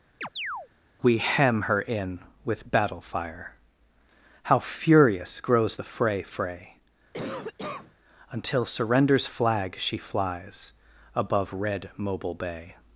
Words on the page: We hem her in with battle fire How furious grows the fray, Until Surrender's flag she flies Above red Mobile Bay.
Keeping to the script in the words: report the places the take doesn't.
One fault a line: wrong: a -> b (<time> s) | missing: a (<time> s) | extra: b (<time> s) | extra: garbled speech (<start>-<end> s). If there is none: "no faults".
extra: fray (6.2 s)